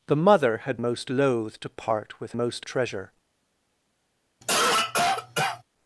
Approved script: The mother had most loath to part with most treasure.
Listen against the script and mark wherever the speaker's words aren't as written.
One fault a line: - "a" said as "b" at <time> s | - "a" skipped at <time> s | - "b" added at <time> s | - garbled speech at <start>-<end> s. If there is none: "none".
none